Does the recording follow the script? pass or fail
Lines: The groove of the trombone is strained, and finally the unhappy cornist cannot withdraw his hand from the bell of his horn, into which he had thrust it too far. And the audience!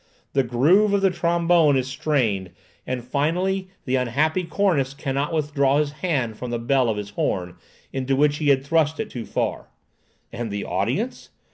pass